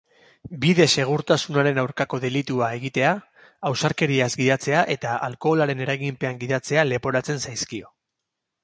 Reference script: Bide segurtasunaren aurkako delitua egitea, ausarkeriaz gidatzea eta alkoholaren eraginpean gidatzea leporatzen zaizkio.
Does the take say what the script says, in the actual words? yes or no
yes